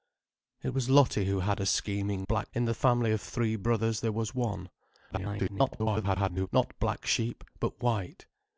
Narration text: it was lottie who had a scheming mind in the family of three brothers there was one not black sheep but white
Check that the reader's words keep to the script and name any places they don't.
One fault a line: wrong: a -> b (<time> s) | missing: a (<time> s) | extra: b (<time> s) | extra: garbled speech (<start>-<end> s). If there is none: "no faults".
wrong: mind -> black (2.3 s)
extra: garbled speech (5.1-6.5 s)